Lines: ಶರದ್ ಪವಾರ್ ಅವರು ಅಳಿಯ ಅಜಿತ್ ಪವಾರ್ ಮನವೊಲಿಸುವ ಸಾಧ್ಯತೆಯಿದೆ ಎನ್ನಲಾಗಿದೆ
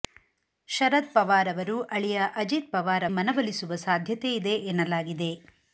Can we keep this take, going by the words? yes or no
yes